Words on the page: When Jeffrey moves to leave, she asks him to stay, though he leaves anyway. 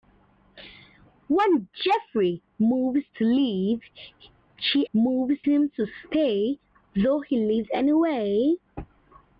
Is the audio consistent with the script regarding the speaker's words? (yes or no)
no